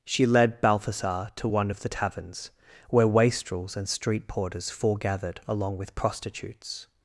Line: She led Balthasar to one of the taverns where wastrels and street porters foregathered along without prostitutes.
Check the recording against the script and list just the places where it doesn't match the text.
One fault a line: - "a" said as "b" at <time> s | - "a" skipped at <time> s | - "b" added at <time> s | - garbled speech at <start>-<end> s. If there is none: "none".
- "without" said as "with" at 5.8 s